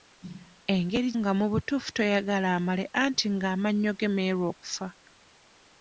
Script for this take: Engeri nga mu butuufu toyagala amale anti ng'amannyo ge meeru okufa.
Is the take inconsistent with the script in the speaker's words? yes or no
no